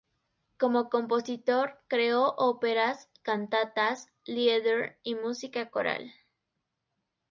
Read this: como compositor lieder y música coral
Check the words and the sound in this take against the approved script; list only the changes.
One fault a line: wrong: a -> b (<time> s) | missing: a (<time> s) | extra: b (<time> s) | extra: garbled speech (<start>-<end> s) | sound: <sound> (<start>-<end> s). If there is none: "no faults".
extra: creó óperas cantatas (1.9 s)